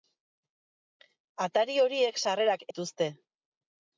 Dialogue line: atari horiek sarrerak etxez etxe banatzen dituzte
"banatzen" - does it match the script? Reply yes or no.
no